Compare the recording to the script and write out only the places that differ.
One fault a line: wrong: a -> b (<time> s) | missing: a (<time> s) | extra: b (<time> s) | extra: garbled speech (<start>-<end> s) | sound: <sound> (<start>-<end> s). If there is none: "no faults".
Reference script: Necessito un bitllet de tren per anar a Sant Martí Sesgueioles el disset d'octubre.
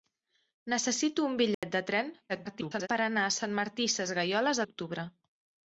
sound: dropout (1.5-1.6 s)
extra: garbled speech (2.3-2.9 s)
missing: el disset (4.6 s)